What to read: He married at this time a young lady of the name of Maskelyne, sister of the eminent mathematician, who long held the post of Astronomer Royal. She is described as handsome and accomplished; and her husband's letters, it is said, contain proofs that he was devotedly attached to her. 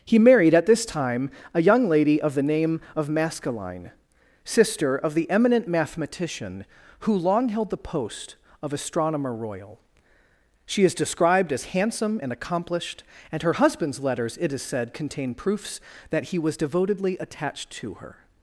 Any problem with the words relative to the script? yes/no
no